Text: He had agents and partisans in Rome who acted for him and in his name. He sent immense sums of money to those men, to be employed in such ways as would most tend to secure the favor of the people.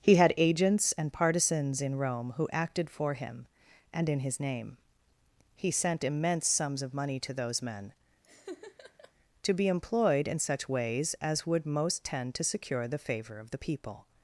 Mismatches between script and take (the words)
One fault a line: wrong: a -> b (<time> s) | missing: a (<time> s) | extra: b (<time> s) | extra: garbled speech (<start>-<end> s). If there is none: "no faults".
no faults